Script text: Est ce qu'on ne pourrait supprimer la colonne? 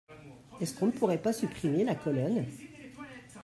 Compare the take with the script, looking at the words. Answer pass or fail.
fail